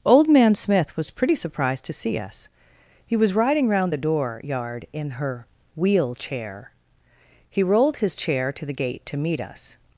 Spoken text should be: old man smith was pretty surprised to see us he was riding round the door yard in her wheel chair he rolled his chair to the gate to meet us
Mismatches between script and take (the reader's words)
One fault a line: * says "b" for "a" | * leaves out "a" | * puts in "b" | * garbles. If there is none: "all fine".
all fine